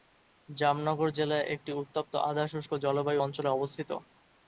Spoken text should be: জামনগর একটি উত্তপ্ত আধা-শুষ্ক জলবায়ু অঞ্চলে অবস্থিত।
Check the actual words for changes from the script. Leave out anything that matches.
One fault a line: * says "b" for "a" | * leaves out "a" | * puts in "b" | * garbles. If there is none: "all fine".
* puts in "জেলা"